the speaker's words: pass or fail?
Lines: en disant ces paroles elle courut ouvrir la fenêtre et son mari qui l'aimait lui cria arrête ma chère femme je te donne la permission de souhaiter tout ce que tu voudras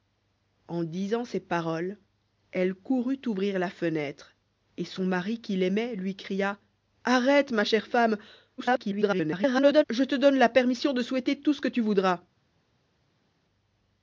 fail